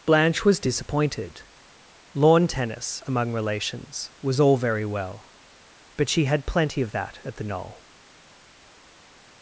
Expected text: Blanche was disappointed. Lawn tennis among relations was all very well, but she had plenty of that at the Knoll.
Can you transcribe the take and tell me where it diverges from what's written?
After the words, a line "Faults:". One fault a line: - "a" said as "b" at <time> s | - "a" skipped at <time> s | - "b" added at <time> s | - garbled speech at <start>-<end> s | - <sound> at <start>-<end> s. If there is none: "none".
Blanche was disappointed. Lawn tennis among relations was all very well, but she had plenty of that at the Knoll.
Faults:
none